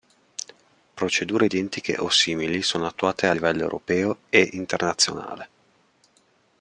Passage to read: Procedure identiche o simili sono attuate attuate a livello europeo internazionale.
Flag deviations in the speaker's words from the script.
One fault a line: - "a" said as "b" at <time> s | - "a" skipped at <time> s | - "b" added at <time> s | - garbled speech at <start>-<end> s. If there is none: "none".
- "attuate" skipped at 3.3 s
- "e" added at 4.3 s